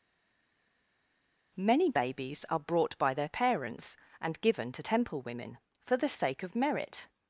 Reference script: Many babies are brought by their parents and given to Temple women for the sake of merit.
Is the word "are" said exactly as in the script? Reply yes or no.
yes